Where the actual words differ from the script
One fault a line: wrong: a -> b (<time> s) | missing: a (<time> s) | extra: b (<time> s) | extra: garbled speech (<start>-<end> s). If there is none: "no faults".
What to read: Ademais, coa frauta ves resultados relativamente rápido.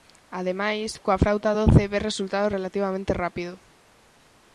extra: doce (1.6 s)